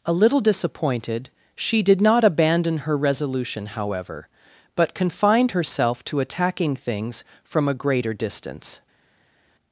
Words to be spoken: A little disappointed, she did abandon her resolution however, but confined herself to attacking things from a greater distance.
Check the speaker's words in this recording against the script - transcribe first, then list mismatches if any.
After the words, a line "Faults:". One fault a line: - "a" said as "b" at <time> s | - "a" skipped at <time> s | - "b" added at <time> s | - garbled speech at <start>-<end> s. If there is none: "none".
A little disappointed, she did not abandon her resolution however, but confined herself to attacking things from a greater distance.
Faults:
- "not" added at 2.0 s